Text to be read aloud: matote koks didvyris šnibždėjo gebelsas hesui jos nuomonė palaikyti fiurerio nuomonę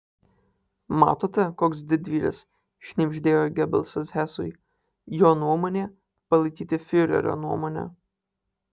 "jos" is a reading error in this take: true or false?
true